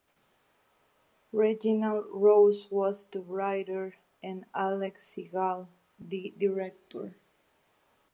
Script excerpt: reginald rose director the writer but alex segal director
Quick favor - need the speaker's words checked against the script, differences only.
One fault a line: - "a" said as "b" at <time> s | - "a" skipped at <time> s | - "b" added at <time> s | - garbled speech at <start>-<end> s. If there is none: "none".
- "director" said as "was" at 2.7 s
- "but" said as "and" at 4.2 s
- "the" added at 6.0 s